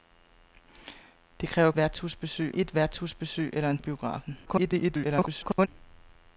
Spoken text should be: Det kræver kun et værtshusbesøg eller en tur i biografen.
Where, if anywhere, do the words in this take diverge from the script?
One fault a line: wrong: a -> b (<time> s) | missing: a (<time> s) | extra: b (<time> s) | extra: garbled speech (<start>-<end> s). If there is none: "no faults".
wrong: kun -> værtshusbesøg (1.8 s)
missing: tur (3.8 s)
extra: garbled speech (4.5-5.7 s)